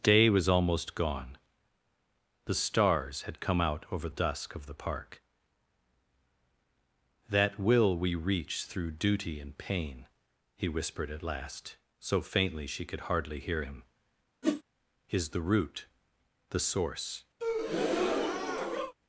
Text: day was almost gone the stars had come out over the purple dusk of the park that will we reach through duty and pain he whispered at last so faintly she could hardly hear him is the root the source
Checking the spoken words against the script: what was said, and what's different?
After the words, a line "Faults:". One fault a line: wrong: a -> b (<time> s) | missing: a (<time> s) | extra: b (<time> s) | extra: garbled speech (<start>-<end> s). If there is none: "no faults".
day was almost gone the stars had come out over dusk of the park that will we reach through duty and pain he whispered at last so faintly she could hardly hear him is the root the source
Faults:
missing: the purple (4.1 s)